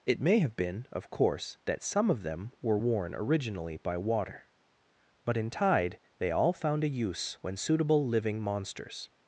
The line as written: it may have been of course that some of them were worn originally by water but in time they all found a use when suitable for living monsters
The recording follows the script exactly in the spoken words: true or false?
false